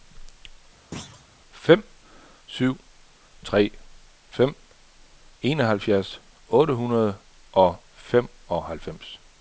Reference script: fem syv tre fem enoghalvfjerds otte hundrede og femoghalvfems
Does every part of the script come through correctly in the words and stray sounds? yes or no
no